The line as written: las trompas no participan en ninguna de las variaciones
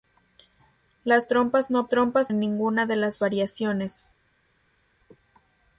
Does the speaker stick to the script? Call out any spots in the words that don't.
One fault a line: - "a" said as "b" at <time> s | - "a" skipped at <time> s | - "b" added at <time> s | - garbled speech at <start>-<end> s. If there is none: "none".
- "participan" said as "trompas" at 1.9 s